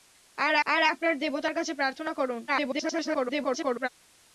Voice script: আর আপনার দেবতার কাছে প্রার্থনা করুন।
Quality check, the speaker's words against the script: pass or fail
fail